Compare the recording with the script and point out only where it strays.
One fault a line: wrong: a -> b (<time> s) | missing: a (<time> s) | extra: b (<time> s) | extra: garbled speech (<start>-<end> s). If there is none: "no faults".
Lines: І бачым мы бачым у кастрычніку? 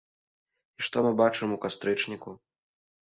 wrong: бачым -> што (0.9 s)